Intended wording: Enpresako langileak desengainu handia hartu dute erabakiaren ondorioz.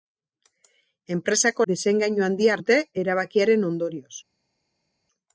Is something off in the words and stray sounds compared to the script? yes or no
yes